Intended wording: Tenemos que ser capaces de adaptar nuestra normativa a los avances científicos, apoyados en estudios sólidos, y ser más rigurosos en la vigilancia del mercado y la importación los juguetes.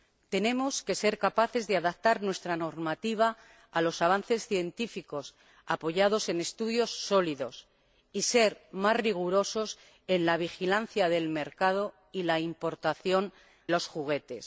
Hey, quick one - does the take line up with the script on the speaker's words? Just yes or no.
yes